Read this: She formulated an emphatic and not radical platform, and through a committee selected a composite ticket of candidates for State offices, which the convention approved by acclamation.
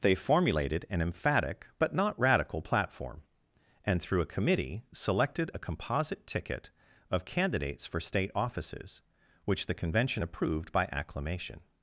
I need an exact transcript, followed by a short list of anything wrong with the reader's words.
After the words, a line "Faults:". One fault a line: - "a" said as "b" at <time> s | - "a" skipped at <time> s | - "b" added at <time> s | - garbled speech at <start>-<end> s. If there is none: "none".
They formulated an emphatic but not radical platform, and through a committee selected a composite ticket of candidates for State offices, which the convention approved by acclamation.
Faults:
- "She" said as "They" at 0.0 s
- "and" said as "but" at 1.8 s